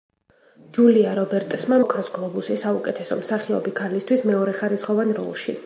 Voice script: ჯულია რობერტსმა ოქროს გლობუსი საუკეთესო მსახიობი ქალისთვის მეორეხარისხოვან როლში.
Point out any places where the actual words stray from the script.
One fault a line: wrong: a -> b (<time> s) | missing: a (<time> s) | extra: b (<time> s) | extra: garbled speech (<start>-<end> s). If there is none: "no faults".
no faults